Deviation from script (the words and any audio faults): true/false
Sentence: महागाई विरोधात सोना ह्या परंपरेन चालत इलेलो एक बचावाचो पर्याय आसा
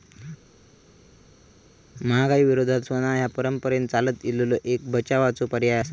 false